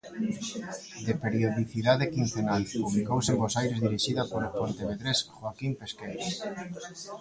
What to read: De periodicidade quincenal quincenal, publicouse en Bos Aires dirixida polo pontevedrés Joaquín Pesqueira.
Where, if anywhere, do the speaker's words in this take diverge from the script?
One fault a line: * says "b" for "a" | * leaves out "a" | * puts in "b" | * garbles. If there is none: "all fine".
* leaves out "quincenal"